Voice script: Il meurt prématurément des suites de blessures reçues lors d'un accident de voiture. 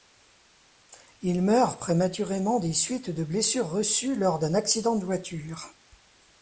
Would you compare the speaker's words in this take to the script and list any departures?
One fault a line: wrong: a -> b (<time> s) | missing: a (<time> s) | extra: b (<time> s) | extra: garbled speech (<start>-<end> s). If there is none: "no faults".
no faults